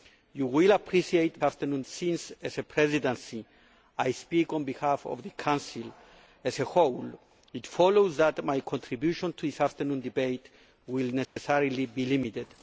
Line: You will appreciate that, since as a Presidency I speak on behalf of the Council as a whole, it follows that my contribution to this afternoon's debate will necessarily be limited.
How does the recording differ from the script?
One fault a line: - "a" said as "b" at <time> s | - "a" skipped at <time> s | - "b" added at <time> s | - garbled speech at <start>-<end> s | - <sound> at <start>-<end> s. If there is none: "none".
- "that" said as "afternoon's" at 1.4 s
- dropout at 11.2-11.4 s